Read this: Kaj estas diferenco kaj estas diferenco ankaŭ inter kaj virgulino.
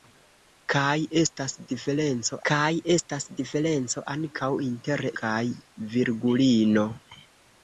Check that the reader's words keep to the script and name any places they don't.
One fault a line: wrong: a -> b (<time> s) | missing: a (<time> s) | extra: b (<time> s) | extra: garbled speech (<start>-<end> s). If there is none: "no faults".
no faults